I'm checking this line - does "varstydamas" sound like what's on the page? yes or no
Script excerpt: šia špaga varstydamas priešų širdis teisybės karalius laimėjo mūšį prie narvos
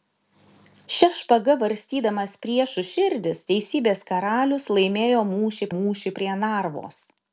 yes